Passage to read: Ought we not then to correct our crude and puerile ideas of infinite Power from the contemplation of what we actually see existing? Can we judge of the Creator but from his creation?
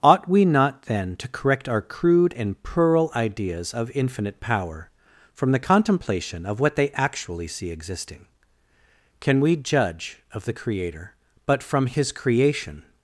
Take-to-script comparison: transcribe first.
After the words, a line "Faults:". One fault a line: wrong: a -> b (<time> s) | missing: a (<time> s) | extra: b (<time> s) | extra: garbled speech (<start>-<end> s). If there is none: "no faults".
Ought we not then to correct our crude and puerile ideas of infinite Power from the contemplation of what they actually see existing? Can we judge of the Creator but from his creation?
Faults:
wrong: we -> they (6.8 s)